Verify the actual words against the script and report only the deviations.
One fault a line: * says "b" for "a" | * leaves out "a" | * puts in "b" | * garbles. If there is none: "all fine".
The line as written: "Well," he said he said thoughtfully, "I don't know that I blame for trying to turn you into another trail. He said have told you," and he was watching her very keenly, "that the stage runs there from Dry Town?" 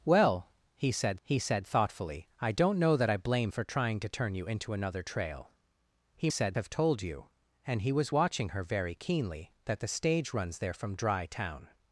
all fine